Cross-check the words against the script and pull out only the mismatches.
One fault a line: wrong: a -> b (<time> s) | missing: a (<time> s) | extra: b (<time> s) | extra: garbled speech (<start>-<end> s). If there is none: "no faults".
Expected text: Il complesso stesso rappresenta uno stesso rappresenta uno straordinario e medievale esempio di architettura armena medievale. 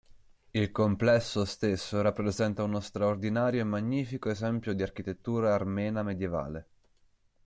missing: stesso rappresenta uno (2.8 s)
wrong: medievale -> magnifico (3.6 s)